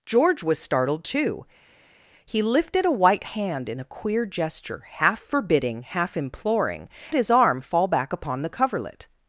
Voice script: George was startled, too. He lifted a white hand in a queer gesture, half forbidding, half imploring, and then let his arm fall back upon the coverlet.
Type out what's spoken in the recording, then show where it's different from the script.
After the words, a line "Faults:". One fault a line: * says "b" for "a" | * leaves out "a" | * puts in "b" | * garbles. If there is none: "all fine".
George was startled, too. He lifted a white hand in a queer gesture, half forbidding, half imploring, his arm fall back upon the coverlet.
Faults:
* leaves out "and then let"